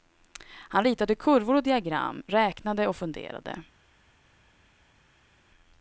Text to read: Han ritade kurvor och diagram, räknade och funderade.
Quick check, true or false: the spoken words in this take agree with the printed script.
true